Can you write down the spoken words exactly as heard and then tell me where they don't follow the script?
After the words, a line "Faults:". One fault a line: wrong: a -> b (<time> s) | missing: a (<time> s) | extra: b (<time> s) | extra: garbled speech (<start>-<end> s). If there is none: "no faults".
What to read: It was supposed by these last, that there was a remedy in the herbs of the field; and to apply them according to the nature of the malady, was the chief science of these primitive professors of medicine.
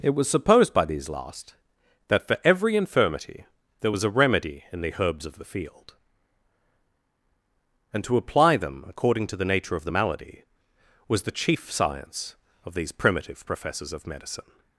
It was supposed by these last, that for every infirmity there was a remedy in the herbs of the field; and to apply them according to the nature of the malady, was the chief science of these primitive professors of medicine.
Faults:
extra: for every infirmity (2.3 s)